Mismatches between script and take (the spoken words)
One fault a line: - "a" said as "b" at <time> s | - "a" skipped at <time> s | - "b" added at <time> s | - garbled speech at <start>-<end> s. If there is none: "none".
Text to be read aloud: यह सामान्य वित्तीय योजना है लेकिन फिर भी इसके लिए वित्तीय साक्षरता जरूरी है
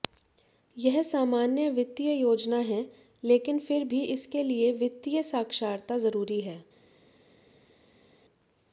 none